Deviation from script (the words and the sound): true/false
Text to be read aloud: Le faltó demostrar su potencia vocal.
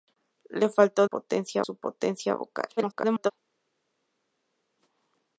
true